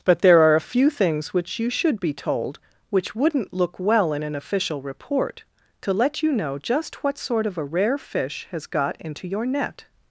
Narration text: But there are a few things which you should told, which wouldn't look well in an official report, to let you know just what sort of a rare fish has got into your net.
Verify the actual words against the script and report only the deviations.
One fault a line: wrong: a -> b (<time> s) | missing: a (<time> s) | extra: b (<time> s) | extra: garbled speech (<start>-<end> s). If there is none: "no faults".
extra: be (2.0 s)